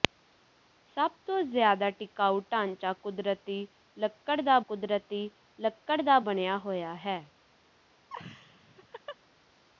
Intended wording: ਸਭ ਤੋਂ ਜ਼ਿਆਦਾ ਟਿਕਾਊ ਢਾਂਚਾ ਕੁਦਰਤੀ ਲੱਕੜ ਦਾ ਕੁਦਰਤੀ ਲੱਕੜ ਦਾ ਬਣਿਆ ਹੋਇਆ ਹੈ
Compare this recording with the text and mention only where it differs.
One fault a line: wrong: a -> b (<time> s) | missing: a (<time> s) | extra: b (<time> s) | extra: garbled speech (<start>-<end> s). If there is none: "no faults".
no faults